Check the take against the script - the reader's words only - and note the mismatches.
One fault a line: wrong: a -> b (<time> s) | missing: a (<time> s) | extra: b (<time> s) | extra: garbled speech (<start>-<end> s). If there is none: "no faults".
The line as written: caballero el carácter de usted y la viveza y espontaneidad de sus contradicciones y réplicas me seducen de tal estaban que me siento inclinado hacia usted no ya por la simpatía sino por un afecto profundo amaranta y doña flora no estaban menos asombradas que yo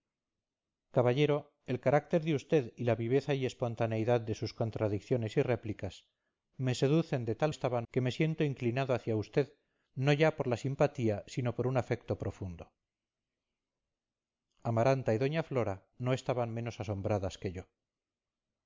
no faults